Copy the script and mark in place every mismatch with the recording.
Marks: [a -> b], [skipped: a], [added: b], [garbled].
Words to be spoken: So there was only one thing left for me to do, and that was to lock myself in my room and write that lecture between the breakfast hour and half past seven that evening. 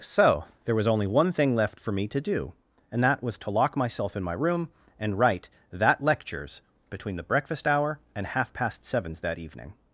So there was only one thing left for me to do, and that was to lock myself in my room and write that [lecture -> lectures] between the breakfast hour and half past [seven -> sevens] that evening.